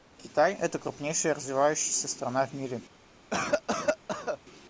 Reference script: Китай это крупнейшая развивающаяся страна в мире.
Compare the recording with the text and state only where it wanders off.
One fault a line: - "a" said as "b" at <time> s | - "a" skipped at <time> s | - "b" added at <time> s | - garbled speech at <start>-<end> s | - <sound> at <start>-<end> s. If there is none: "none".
- cough at 3.3-4.4 s